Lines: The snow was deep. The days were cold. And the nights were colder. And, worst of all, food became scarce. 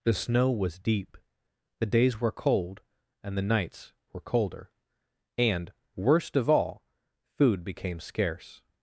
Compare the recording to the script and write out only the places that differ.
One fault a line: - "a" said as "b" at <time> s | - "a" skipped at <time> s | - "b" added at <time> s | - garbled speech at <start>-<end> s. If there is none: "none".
none